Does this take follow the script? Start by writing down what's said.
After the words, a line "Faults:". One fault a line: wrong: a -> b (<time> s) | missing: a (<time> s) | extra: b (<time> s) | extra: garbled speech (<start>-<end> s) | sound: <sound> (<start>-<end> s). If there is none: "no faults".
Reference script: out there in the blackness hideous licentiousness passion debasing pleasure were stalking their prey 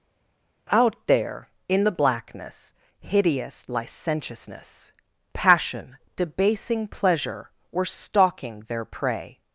out there in the blackness hideous licentiousness passion debasing pleasure were stalking their prey
Faults:
no faults